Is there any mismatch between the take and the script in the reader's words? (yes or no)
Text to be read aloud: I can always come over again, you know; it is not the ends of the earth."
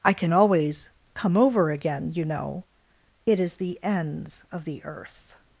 yes